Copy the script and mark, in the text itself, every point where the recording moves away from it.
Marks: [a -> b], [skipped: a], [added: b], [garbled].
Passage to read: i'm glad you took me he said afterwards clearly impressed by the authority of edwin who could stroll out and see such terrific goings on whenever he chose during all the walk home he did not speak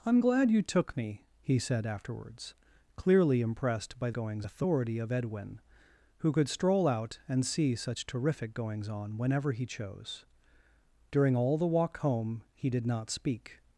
i'm glad you took me he said afterwards clearly impressed by [the -> goings] authority of edwin who could stroll out and see such terrific goings on whenever he chose during all the walk home he did not speak